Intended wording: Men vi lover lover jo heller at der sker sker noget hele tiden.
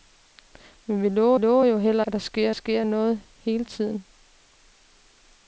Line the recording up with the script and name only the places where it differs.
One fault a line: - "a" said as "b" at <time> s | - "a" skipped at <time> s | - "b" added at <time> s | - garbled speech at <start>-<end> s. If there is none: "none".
none